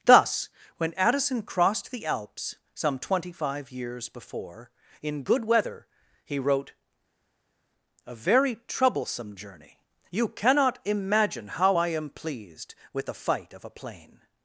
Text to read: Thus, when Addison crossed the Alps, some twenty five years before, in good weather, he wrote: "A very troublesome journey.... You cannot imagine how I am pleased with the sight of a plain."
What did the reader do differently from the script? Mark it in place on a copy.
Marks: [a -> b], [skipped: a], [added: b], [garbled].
Thus, when Addison crossed the Alps, some twenty five years before, in good weather, he wrote: "A very troublesome journey.... You cannot imagine how I am pleased with the [sight -> fight] of a plain."